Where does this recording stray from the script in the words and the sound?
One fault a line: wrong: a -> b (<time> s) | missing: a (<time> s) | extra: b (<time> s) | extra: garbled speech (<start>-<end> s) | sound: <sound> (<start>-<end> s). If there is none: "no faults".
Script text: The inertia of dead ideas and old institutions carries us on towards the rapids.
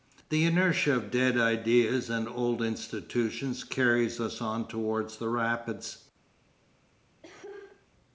sound: cough (7.2-7.9 s)